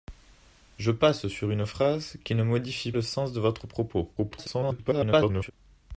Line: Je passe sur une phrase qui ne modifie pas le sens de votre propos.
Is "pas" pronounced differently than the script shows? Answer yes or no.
yes